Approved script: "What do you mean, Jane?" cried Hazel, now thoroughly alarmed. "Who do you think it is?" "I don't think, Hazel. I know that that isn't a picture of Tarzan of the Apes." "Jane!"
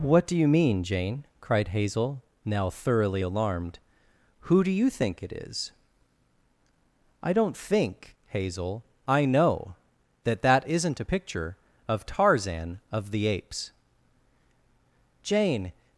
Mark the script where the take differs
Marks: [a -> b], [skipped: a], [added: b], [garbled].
"What do you mean, Jane?" cried Hazel, now thoroughly alarmed. "Who do you think it is?" "I don't think, Hazel. I know that that isn't a picture of Tarzan of the Apes." "Jane!"